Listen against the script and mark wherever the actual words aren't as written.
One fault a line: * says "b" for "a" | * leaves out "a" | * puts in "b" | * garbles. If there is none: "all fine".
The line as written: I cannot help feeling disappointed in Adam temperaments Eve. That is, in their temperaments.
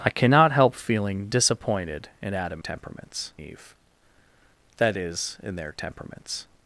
all fine